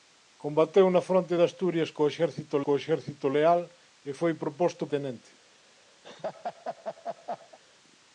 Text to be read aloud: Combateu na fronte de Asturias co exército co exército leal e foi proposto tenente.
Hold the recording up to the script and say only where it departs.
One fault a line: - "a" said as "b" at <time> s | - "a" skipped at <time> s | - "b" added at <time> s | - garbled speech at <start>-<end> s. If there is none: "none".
none